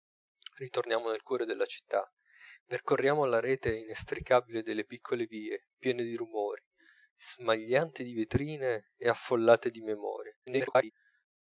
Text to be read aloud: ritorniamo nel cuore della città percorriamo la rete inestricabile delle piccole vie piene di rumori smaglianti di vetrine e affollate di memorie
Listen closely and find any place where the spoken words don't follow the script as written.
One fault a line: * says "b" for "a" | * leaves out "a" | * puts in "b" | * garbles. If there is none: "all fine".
* garbles